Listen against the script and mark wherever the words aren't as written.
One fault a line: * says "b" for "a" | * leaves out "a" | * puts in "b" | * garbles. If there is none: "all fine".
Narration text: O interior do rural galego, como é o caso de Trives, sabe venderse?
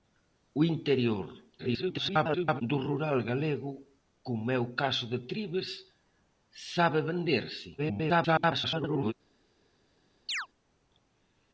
* garbles
* garbles